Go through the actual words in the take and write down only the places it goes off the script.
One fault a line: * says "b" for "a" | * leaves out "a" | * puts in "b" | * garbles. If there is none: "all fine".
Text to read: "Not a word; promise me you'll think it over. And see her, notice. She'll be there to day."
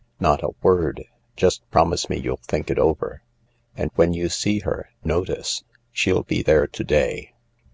* puts in "just"
* puts in "when you"